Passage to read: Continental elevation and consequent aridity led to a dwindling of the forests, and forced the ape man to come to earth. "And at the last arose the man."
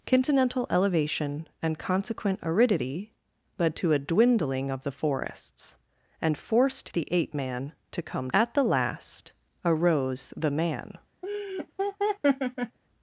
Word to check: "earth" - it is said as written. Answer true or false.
false